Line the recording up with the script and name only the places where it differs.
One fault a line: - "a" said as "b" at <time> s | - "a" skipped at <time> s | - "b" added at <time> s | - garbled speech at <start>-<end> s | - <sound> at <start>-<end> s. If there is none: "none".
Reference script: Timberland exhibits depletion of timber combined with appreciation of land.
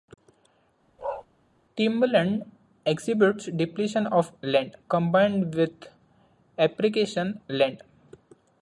- bark at 1.0-1.3 s
- "timber" said as "land" at 4.4 s
- "of" skipped at 7.4 s